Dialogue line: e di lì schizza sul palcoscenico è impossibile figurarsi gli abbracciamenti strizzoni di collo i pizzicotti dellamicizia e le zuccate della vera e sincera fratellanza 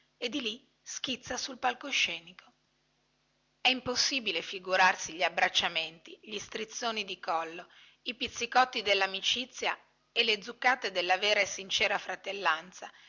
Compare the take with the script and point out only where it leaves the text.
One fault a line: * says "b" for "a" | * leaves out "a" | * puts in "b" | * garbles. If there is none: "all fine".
* puts in "gli"